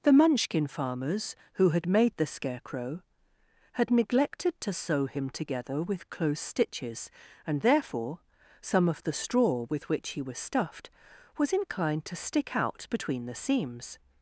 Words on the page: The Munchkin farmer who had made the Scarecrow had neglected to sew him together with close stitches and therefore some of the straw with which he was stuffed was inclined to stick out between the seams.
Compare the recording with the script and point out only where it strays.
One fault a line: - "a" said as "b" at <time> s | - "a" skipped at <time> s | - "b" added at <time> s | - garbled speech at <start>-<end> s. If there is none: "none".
- "farmer" said as "farmers" at 0.7 s